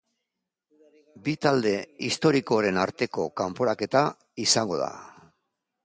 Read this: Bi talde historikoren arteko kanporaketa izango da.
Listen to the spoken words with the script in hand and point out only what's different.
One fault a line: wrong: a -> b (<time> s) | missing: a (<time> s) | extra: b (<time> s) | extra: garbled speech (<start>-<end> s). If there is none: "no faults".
no faults